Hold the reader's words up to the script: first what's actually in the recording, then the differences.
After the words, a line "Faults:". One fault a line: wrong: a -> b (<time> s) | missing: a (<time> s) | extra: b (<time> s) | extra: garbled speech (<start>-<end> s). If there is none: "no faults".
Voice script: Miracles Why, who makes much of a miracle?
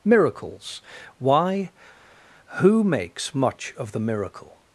Miracles Why, who makes much of the miracle?
Faults:
wrong: a -> the (3.9 s)